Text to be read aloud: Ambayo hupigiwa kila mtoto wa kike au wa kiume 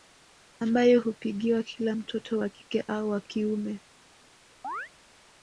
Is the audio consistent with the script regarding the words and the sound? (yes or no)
no